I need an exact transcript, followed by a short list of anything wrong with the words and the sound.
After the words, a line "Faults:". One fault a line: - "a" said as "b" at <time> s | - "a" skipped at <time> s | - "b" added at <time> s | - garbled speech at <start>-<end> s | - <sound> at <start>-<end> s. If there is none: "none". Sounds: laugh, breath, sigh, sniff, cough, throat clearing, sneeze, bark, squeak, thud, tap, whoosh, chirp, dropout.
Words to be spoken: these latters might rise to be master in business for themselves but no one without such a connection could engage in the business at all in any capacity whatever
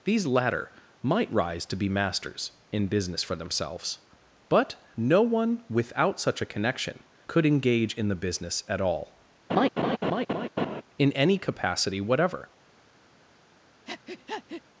these latter might rise to be masters in business for themselves but no one without such a connection could engage in the business at all in any capacity whatever
Faults:
- "latters" said as "latter" at 0.2 s
- "master" said as "masters" at 1.9 s
- laugh at 9.5-10.8 s
- breath at 13.9-14.6 s